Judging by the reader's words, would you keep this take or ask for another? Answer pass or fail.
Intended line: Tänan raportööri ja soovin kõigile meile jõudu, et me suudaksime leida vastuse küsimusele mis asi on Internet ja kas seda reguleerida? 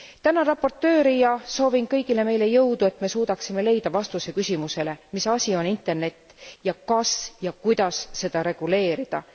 fail